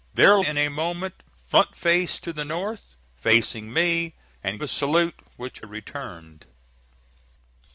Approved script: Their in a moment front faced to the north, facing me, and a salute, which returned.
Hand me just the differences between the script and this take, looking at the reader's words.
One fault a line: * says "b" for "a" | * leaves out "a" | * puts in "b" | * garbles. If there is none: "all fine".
all fine